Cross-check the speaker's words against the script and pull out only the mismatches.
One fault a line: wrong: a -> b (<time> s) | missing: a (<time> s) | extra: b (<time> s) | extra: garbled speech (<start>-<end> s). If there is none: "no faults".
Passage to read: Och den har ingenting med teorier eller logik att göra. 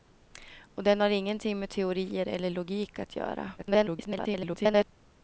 extra: garbled speech (3.6-4.8 s)